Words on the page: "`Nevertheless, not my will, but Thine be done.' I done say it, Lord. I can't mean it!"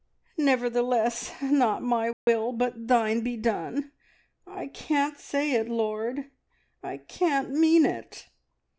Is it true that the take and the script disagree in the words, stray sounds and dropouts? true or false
true